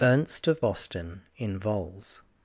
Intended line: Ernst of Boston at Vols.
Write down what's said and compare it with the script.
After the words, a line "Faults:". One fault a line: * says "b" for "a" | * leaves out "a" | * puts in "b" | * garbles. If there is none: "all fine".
Ernst of Boston in Vols.
Faults:
* says "in" for "at"